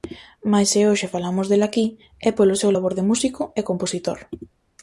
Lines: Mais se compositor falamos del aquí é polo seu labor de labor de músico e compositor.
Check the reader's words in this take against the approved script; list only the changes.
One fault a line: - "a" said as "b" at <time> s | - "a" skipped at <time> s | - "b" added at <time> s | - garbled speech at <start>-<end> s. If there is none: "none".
- "compositor" said as "hoxe" at 0.9 s
- "labor de" skipped at 3.1 s